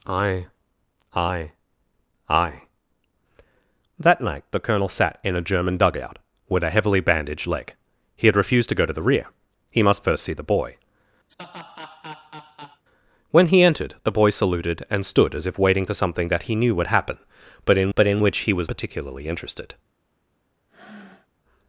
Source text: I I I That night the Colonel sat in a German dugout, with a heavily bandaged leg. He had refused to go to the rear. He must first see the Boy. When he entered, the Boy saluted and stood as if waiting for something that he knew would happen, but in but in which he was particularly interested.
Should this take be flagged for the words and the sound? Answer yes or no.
yes